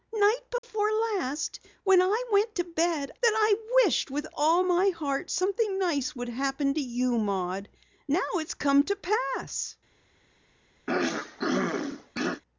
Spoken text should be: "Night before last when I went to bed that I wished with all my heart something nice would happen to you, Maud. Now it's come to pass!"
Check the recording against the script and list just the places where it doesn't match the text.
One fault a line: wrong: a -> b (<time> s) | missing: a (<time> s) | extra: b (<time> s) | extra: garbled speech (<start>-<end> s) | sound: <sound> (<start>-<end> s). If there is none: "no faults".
sound: dropout (0.6-0.6 s)
sound: throat clearing (10.9-12.4 s)